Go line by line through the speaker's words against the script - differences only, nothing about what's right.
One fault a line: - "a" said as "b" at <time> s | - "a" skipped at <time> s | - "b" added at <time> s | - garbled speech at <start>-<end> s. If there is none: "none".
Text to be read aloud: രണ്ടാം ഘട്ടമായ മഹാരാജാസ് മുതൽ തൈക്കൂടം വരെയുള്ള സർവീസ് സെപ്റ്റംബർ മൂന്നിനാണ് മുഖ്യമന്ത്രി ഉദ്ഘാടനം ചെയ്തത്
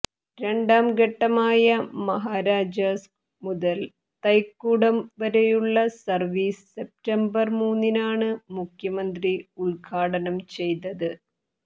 none